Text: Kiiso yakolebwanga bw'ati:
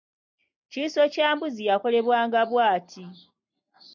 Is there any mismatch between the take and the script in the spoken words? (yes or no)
yes